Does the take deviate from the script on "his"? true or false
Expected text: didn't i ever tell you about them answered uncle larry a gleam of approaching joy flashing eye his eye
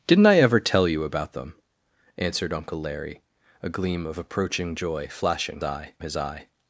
false